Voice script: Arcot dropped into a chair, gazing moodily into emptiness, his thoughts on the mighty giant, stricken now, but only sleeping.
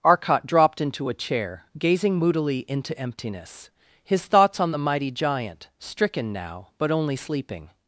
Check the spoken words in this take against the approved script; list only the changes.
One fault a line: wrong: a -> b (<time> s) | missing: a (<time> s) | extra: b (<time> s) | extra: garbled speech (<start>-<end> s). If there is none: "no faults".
no faults